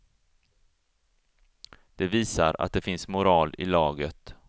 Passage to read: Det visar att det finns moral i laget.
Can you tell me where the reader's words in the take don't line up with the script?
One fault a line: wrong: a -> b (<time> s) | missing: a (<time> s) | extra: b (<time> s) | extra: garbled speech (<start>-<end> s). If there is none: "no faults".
no faults